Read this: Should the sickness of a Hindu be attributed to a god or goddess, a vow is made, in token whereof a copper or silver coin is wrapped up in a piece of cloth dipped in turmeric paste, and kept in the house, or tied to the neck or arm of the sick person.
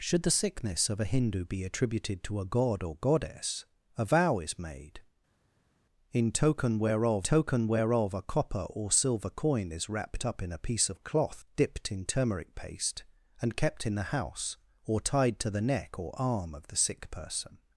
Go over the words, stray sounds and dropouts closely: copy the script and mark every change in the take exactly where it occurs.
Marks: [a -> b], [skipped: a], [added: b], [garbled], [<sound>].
Should the sickness of a Hindu be attributed to a god or goddess, a vow is made, in token whereof [added: token whereof] a copper or silver coin is wrapped up in a piece of cloth dipped in turmeric paste, and kept in the house, or tied to the neck or arm of the sick person.